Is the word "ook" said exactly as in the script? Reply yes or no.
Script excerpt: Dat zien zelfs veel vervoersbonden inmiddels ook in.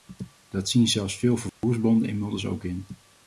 yes